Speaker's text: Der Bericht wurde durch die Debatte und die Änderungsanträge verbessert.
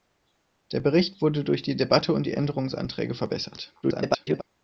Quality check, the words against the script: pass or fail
fail